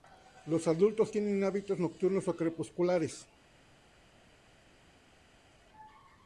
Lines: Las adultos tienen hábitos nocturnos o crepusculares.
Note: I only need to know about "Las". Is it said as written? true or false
false